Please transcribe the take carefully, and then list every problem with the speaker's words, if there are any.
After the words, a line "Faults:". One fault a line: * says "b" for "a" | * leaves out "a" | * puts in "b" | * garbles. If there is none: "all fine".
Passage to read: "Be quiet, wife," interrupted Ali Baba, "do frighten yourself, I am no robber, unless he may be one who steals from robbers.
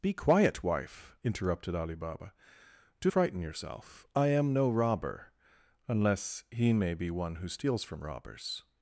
"Be quiet, wife," interrupted Ali Baba, "do frighten yourself, I am no robber, unless he may be one who steals from robbers.
Faults:
all fine